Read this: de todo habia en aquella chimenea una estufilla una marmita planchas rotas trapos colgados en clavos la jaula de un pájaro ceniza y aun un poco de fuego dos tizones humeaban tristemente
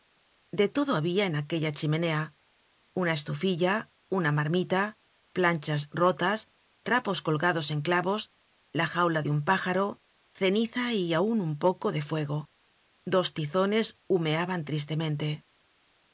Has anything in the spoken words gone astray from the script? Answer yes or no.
no